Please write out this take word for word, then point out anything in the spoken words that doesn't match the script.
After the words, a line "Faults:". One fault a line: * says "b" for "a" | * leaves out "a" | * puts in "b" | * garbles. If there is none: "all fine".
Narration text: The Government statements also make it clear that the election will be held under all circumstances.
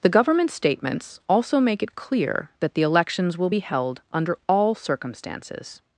The Government statements also make it clear that the elections will be held under all circumstances.
Faults:
* says "elections" for "election"